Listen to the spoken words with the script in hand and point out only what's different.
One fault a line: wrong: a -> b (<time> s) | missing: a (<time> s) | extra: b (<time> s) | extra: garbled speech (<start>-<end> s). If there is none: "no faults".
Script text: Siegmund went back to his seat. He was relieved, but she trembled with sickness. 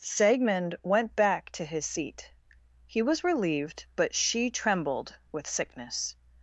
no faults